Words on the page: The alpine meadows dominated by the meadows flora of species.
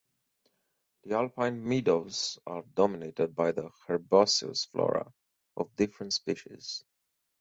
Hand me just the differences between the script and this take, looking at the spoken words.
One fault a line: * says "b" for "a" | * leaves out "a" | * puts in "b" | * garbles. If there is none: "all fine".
* puts in "are"
* says "herbaceous" for "meadows"
* puts in "different"